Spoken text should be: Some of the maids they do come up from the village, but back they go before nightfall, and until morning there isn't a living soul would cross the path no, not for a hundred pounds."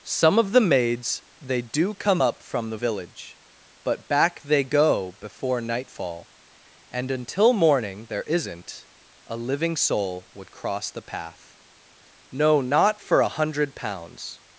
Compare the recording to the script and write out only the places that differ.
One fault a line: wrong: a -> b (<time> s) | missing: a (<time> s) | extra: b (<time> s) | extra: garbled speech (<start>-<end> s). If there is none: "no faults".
no faults